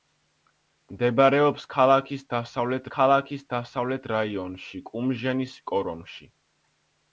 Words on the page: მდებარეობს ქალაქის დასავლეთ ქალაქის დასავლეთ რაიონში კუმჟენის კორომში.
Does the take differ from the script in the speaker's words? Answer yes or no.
no